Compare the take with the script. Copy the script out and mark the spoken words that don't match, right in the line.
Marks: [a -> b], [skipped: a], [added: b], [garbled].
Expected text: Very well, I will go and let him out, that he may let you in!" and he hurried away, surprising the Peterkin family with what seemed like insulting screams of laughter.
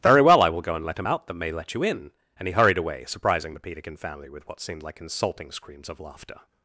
Very well, I will go and let him out, that [skipped: he] may let you in!" and he hurried away, surprising the Peterkin family with what seemed like insulting screams of laughter.